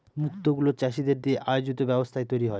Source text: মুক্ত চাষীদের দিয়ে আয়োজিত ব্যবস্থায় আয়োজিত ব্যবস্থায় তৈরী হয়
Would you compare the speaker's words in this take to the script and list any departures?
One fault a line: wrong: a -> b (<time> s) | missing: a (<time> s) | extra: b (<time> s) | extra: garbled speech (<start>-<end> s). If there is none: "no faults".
extra: গুলো (0.5 s)
missing: আয়োজিত ব্যবস্থায় (2.3 s)